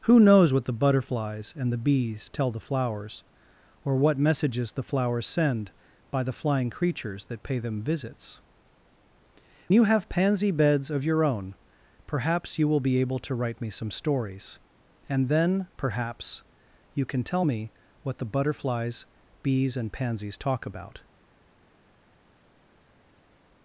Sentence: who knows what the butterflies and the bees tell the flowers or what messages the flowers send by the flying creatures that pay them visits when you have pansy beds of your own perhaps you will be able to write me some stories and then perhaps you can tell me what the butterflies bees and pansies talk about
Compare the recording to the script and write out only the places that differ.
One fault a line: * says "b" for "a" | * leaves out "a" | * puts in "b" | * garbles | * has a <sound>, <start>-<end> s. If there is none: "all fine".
* leaves out "when"